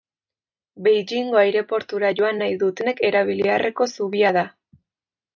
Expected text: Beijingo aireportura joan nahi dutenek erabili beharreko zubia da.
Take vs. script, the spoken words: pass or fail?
pass